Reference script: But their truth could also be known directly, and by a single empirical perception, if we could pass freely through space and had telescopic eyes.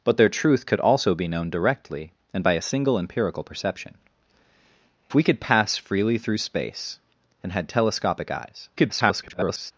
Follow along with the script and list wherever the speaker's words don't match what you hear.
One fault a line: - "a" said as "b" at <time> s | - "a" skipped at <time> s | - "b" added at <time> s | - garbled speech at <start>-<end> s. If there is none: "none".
- "if" skipped at 3.9 s
- garbled speech at 8.8-9.7 s